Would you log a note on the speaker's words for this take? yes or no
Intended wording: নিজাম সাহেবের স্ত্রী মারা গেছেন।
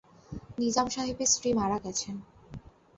no